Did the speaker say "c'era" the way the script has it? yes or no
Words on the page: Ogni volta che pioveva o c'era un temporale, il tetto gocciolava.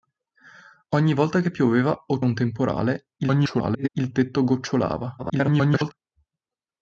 no